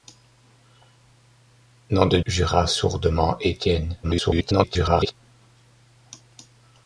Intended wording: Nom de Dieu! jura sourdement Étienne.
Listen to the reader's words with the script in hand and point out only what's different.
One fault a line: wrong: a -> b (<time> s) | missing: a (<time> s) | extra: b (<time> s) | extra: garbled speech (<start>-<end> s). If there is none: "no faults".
missing: Dieu (2.2 s)
extra: garbled speech (4.0-5.1 s)